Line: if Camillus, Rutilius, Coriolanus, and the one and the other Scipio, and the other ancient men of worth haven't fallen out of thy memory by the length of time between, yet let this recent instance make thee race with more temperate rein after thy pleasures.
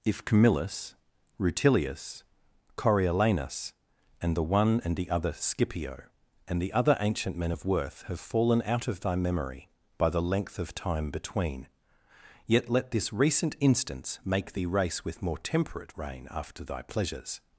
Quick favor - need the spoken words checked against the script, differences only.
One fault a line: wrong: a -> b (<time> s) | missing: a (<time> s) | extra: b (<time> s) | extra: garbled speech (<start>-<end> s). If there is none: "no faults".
wrong: haven't -> have (8.0 s)